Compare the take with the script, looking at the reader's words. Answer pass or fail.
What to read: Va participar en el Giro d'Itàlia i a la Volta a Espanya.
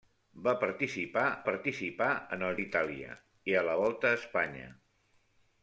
fail